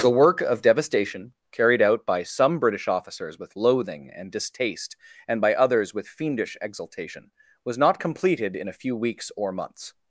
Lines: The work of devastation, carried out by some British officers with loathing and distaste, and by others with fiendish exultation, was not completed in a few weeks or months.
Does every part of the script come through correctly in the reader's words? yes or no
yes